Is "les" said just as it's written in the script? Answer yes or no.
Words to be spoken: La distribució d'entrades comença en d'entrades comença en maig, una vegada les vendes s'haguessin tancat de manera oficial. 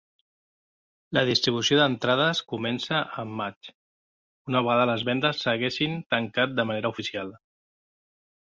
yes